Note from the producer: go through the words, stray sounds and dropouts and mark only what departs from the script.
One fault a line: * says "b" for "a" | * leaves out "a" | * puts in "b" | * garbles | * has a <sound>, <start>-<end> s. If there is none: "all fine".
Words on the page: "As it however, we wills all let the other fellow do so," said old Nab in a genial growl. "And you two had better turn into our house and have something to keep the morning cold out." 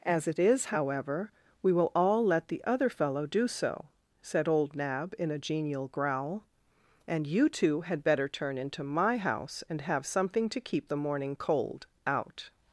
* puts in "is"
* says "will" for "wills"
* says "my" for "our"